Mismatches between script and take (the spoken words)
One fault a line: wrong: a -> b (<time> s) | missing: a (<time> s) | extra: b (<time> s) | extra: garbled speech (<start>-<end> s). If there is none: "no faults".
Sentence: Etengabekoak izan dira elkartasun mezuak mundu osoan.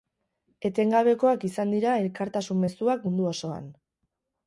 no faults